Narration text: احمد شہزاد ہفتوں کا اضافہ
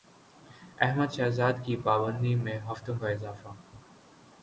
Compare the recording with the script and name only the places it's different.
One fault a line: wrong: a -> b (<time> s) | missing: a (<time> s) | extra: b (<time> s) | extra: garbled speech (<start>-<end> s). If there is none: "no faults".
extra: کی پابندی میں (1.6 s)